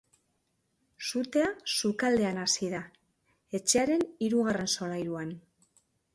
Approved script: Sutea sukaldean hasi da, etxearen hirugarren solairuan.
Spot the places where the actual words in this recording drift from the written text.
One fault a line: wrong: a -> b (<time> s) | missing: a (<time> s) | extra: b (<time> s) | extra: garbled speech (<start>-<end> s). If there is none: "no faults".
no faults